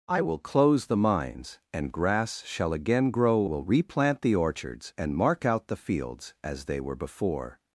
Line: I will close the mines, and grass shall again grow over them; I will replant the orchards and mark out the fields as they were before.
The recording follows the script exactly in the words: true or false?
false